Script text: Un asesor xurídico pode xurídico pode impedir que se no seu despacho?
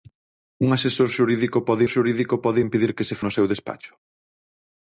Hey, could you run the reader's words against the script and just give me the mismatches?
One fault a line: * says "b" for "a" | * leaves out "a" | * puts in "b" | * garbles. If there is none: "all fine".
all fine